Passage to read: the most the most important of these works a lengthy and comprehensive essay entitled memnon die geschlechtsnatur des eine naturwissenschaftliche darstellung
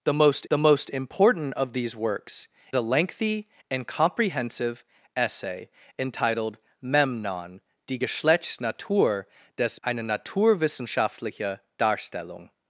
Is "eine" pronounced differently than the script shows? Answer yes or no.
no